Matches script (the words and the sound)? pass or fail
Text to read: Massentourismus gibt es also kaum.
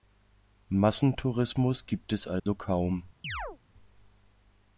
fail